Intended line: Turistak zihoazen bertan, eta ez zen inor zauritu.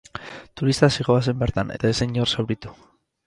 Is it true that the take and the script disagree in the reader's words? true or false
false